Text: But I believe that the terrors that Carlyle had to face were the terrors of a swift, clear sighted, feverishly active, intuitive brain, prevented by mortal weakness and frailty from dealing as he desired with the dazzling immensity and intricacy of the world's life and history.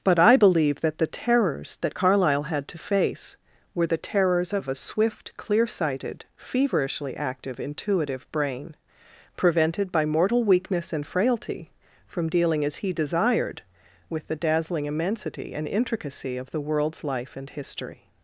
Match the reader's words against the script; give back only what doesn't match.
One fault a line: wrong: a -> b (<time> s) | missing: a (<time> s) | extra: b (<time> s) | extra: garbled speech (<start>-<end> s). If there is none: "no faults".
no faults